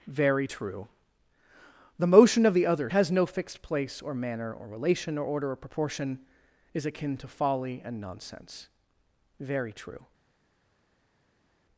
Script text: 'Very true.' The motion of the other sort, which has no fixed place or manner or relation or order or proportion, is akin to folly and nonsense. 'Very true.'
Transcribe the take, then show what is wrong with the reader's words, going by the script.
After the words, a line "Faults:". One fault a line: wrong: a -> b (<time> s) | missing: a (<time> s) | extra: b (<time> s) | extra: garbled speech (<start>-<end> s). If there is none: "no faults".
'Very true.' The motion of the other has no fixed place or manner or relation or order or proportion, is akin to folly and nonsense. 'Very true.'
Faults:
missing: sort which (2.9 s)